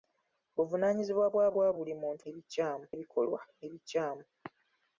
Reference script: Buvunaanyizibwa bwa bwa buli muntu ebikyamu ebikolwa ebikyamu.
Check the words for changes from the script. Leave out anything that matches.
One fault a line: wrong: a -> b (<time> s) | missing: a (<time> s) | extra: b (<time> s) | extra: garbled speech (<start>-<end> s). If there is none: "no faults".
no faults